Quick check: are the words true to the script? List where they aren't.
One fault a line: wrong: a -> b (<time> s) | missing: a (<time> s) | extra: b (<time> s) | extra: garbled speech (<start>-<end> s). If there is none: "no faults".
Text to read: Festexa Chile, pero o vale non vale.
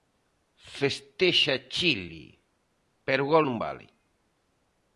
wrong: vale -> gol (3.3 s)